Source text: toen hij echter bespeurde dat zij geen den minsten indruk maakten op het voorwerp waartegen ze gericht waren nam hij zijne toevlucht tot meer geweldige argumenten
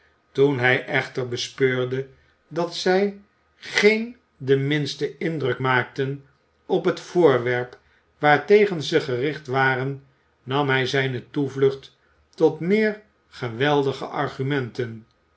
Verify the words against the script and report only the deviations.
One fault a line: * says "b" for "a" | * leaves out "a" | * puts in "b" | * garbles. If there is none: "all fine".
all fine